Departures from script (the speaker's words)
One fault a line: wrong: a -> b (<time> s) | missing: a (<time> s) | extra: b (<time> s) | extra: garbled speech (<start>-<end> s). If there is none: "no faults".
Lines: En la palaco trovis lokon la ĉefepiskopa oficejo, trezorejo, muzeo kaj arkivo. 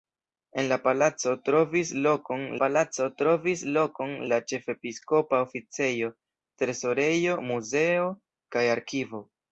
extra: palaco trovis lokon (2.6 s)